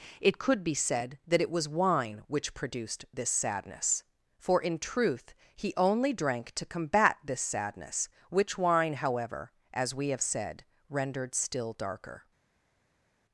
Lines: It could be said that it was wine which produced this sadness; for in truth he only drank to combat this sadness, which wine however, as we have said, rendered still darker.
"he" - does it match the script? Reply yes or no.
yes